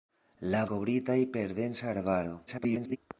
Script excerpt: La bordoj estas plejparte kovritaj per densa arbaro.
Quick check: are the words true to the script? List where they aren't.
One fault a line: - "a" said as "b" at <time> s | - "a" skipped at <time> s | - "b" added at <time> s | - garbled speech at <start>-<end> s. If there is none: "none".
- "bordoj estas plejparte" skipped at 0.6 s
- garbled speech at 2.5-3.0 s